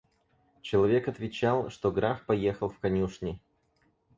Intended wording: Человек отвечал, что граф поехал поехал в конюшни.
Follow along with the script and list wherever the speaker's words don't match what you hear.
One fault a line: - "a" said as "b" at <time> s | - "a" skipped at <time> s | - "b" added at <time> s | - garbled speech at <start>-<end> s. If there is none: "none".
- "поехал" skipped at 2.7 s